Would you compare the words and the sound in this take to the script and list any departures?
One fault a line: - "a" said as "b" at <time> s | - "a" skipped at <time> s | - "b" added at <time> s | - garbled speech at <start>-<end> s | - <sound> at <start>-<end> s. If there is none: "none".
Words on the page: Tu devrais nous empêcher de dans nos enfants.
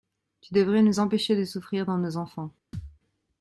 - "souffrir" added at 1.4 s
- thud at 2.7-3.0 s